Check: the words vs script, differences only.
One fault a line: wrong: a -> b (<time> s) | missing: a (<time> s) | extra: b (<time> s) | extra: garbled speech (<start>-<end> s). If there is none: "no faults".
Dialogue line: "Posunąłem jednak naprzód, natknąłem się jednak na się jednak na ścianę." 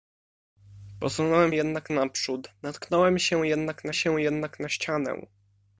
no faults